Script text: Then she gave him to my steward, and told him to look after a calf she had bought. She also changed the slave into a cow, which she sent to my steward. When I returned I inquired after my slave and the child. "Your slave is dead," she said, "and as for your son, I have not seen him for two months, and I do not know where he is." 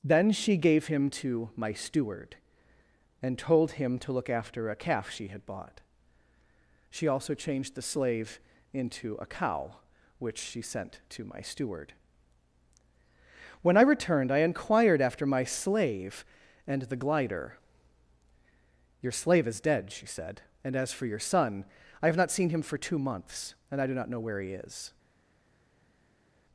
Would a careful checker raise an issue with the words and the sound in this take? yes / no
yes